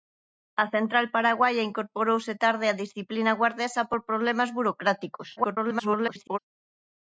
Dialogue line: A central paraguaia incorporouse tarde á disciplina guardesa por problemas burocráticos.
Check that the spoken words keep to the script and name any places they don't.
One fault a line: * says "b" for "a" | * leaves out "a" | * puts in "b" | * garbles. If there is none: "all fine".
* garbles